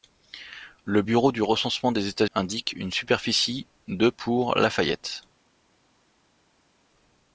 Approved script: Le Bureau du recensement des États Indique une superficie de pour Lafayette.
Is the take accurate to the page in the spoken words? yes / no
yes